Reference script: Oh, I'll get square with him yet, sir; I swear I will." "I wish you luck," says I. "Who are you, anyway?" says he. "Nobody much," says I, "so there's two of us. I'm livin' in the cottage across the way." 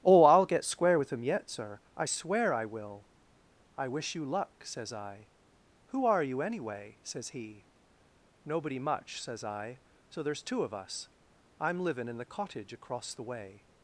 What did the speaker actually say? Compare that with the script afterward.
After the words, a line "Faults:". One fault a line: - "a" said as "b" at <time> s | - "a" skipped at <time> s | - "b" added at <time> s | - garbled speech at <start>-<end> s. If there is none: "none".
Oh, I'll get square with him yet, sir; I swear I will." "I wish you luck," says I. "Who are you, anyway?" says he. "Nobody much," says I, "so there's two of us. I'm livin' in the cottage across the way."
Faults:
none